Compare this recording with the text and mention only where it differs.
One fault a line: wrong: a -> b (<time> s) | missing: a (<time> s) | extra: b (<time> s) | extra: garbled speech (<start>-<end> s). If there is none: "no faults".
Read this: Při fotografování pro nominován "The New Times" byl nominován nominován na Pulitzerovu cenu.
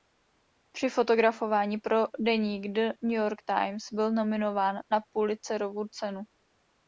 wrong: nominován -> deník (2.2 s)
extra: York (3.2 s)
missing: nominován (4.8 s)